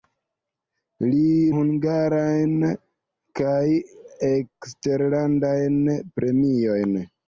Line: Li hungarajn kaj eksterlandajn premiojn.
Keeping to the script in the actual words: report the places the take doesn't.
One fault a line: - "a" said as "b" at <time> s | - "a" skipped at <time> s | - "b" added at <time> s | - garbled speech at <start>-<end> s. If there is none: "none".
none